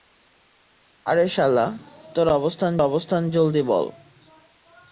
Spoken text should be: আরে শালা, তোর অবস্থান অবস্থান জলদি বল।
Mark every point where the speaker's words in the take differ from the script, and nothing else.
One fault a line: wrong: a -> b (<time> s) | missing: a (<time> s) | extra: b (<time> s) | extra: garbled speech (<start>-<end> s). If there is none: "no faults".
no faults